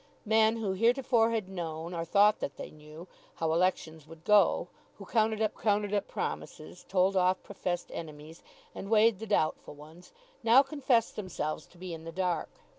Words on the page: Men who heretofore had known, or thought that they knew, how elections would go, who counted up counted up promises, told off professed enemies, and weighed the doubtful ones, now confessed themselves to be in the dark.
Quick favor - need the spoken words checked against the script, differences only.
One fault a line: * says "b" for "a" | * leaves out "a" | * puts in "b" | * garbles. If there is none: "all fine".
all fine